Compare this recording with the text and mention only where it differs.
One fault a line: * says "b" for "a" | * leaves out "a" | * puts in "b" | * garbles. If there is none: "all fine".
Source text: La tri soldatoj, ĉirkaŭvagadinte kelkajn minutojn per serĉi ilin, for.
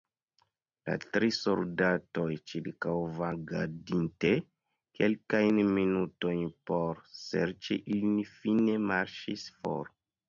* says "por" for "per"
* puts in "fine marŝis"